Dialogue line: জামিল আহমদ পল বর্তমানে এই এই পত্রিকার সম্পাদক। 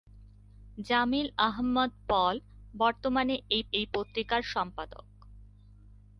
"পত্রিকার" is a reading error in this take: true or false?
false